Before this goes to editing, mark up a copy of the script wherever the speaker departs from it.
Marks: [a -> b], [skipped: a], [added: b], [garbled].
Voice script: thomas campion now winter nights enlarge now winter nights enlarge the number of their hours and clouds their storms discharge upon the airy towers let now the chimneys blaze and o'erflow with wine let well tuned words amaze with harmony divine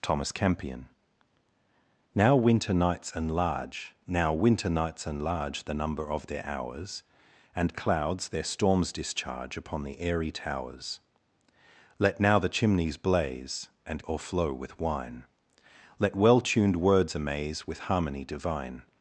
thomas campion now winter nights enlarge now winter nights enlarge the number of their hours and clouds their storms discharge upon the airy towers let now the chimneys blaze and o'erflow with wine let well tuned words amaze with harmony divine